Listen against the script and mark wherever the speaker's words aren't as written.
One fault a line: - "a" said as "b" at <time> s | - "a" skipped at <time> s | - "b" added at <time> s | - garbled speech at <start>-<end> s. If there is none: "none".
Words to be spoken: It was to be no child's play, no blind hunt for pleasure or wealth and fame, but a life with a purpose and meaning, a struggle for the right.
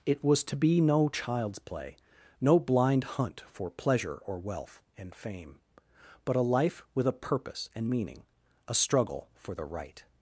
none